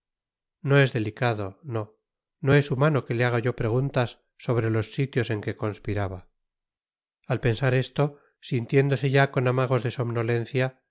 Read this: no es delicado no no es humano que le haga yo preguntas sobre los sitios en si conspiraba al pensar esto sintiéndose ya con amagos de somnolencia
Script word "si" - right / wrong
wrong